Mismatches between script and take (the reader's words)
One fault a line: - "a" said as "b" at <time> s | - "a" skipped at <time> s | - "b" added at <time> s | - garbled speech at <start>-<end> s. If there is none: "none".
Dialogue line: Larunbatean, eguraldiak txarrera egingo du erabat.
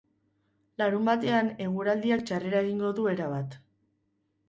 none